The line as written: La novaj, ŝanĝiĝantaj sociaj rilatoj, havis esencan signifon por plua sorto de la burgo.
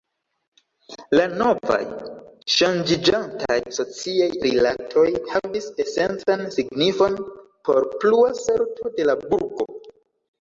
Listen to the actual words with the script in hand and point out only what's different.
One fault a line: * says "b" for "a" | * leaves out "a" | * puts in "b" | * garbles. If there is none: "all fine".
all fine